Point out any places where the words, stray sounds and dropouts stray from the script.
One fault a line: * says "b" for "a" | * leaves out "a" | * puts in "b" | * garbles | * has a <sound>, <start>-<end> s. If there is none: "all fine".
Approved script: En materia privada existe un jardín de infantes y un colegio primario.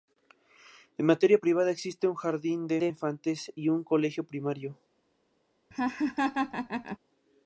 * puts in "de"
* has a laugh, 5.7-7.0 s